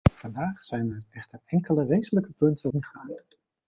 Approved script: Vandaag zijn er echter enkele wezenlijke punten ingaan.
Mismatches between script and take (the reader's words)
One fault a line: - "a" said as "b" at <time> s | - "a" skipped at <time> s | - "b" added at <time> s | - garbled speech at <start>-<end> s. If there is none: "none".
none